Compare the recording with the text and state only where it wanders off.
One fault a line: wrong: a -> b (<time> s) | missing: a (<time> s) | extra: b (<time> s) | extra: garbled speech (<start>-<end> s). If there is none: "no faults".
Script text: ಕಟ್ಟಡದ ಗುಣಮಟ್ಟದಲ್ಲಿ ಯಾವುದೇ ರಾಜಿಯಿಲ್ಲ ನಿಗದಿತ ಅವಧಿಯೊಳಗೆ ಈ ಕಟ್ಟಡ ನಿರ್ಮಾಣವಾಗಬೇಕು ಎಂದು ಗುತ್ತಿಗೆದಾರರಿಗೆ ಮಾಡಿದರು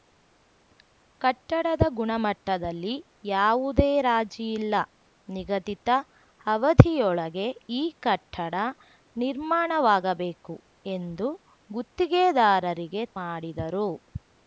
no faults